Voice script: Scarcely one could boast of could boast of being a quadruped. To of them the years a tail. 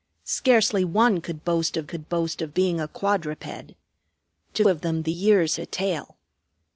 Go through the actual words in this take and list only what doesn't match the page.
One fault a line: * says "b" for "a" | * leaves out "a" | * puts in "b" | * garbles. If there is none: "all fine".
all fine